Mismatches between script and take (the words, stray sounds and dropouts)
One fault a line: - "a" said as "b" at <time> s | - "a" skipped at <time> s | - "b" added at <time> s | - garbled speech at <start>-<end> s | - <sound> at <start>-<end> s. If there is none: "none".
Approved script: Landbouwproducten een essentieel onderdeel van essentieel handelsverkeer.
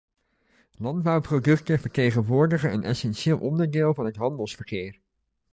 - "vertegenwoordigen" added at 1.8 s
- "essentieel" said as "het" at 4.0 s